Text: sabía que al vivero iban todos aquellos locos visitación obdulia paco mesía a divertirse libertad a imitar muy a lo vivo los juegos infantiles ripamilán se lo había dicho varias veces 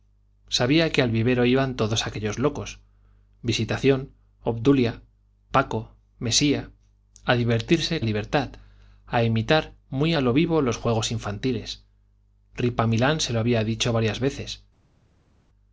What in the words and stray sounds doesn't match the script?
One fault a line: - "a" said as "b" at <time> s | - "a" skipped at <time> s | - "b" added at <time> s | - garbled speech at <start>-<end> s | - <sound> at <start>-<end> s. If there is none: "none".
none